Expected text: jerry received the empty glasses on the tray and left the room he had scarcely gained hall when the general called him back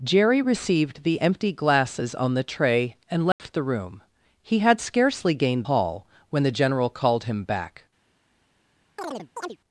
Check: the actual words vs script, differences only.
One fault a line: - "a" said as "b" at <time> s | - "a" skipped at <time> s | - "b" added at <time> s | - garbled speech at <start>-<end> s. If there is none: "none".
none